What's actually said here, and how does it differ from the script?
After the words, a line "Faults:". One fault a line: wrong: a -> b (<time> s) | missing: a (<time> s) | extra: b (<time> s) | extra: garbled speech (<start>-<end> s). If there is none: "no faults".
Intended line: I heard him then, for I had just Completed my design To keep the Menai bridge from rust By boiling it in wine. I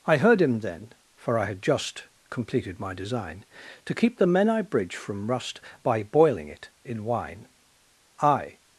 I heard him then, for I had just Completed my design To keep the Menai bridge from rust By boiling it in wine. I
Faults:
no faults